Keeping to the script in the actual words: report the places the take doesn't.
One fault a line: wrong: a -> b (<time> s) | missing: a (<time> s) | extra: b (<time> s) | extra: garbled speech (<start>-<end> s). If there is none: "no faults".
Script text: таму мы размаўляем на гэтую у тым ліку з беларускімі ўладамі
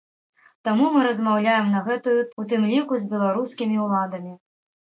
no faults